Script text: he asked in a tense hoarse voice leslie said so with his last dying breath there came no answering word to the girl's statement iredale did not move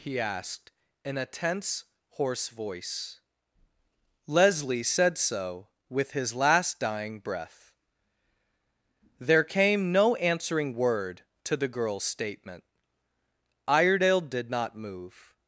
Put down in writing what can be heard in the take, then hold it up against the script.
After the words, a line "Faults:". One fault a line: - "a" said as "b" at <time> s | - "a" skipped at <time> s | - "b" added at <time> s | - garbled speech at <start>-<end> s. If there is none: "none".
he asked in a tense hoarse voice leslie said so with his last dying breath there came no answering word to the girl's statement iredale did not move
Faults:
none